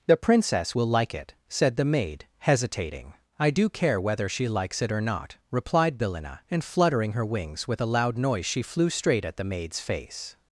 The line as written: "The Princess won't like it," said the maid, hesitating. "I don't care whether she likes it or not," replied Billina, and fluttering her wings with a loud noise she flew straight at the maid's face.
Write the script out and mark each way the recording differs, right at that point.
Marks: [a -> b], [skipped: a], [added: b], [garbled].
"The Princess [won't -> will] like it," said the maid, hesitating. "I [don't -> do] care whether she likes it or not," replied Billina, and fluttering her wings with a loud noise she flew straight at the maid's face.